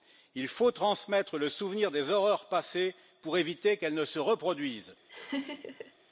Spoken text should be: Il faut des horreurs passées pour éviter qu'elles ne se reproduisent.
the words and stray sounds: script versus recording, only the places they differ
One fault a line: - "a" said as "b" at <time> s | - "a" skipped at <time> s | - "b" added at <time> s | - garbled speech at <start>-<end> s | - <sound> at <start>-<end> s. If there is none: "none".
- "transmettre le souvenir" added at 0.7 s
- laugh at 5.1-5.9 s